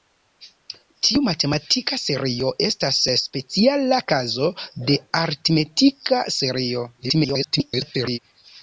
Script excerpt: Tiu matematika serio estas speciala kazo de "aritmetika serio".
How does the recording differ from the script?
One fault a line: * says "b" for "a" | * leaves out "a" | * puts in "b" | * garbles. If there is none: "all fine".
* garbles